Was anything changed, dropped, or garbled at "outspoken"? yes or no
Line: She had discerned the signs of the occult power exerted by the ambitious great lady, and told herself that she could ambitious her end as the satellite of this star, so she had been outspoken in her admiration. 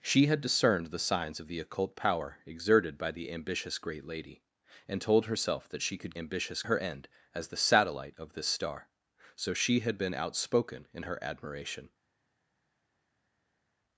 no